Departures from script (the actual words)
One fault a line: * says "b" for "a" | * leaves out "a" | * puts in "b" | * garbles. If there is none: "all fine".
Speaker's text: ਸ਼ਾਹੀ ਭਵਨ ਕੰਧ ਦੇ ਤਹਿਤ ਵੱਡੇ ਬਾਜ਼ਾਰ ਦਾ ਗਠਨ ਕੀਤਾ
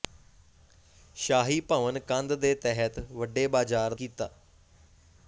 * leaves out "ਦਾ ਗਠਨ"